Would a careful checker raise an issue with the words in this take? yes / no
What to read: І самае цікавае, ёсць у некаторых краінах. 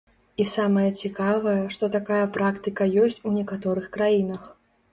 yes